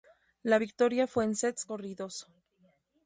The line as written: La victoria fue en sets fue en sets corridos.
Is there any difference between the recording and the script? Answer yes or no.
yes